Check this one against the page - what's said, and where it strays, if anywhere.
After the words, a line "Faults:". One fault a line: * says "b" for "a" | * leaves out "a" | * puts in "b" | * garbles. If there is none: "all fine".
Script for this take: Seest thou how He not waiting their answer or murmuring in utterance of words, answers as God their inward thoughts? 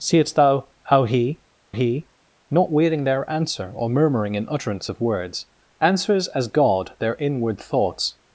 Seest thou how He He not waiting their answer or murmuring in utterance of words, answers as God their inward thoughts?
Faults:
* puts in "He"